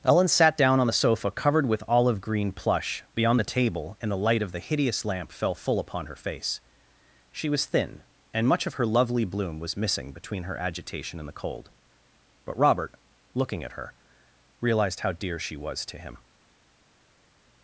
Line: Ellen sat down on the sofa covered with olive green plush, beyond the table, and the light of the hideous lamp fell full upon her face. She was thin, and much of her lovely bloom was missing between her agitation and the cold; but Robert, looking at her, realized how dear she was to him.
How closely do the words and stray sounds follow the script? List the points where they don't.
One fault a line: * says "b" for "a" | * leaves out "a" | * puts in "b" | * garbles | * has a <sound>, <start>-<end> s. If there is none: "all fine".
all fine